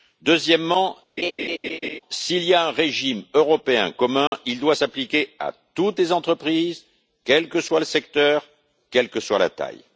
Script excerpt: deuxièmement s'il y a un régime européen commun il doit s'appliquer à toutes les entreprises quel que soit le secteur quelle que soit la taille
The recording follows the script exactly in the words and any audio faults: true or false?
false